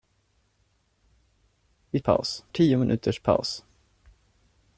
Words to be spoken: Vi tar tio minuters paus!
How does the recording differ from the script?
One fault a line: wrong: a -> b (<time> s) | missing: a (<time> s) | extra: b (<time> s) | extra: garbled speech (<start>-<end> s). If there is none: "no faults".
wrong: tar -> paus (2.0 s)